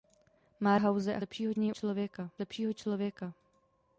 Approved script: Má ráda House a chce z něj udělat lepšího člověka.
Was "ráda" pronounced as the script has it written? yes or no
no